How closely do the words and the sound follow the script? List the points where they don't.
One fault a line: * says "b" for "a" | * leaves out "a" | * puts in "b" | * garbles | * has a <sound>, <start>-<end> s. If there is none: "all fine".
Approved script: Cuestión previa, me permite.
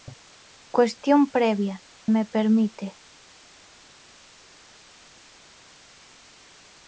all fine